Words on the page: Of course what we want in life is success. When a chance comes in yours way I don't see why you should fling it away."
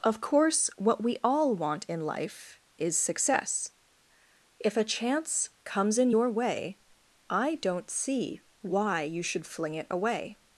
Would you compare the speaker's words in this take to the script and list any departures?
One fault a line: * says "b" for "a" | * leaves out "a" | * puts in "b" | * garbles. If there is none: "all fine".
* puts in "all"
* says "If" for "When"
* says "your" for "yours"